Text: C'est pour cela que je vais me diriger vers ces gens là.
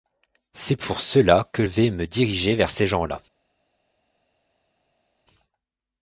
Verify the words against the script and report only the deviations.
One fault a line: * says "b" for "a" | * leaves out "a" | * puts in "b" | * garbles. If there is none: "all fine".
* leaves out "je"